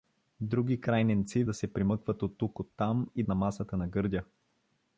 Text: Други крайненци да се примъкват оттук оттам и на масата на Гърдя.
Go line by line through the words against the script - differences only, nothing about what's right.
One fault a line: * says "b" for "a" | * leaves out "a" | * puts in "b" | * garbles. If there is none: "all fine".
all fine